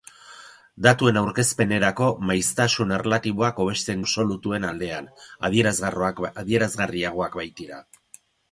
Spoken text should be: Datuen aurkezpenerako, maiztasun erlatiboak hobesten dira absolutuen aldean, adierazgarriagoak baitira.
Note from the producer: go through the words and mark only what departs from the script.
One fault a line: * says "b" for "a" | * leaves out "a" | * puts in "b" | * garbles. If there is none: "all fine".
* leaves out "dira"